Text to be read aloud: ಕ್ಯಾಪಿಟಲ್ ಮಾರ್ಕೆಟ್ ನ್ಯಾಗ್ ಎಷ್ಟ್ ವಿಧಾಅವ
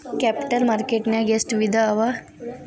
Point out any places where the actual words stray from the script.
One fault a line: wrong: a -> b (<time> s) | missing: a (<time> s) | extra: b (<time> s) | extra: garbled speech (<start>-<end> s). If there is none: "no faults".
no faults